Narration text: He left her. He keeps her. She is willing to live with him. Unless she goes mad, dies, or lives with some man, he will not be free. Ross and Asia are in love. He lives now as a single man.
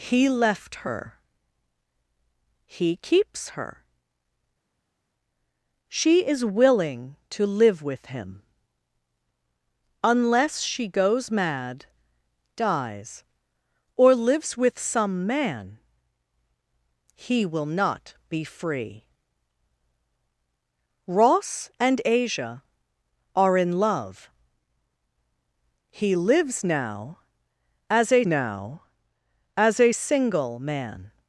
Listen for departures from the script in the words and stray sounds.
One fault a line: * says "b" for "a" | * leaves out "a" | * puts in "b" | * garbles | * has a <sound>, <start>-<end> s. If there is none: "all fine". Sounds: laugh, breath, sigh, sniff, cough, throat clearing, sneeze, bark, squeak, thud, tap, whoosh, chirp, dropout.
* puts in "now as a"